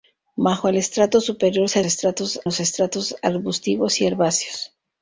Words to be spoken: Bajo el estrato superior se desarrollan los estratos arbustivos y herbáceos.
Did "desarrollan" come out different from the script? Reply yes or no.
yes